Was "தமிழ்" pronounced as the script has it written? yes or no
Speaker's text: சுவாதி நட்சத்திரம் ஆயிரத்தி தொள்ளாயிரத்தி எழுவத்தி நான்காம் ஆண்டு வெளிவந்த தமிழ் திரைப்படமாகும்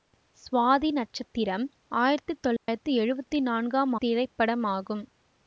no